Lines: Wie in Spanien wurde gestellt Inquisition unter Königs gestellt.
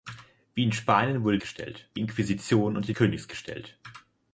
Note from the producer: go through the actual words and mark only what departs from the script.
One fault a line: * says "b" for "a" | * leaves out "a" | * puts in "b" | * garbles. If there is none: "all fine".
all fine